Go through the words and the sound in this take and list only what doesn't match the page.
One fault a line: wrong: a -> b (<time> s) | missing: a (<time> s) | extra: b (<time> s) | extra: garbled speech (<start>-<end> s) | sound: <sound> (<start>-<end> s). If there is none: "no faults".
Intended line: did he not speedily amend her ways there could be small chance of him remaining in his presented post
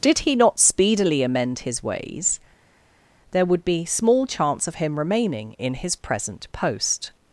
wrong: her -> his (1.6 s)
wrong: could -> would (3.4 s)
wrong: presented -> present (5.9 s)